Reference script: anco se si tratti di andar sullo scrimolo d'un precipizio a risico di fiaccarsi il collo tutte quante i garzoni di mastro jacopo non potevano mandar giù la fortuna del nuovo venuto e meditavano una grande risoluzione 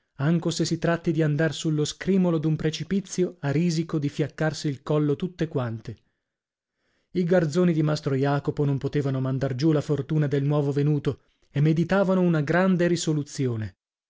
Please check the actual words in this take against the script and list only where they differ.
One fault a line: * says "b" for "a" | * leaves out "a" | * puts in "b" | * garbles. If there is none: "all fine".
all fine